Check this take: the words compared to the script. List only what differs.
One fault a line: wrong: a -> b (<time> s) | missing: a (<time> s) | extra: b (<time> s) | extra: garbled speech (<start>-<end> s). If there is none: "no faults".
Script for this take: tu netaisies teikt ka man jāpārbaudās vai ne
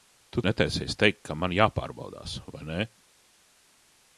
no faults